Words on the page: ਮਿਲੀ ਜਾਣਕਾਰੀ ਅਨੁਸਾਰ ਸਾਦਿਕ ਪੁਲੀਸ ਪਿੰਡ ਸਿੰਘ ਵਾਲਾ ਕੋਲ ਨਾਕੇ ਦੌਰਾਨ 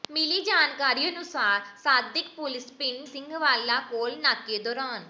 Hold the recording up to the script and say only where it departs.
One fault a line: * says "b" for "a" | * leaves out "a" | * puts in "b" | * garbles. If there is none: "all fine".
all fine